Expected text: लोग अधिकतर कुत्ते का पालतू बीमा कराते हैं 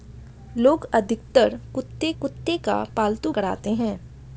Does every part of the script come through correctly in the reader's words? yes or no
no